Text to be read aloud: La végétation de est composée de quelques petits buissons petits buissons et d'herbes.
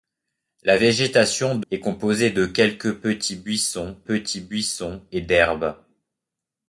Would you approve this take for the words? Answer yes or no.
yes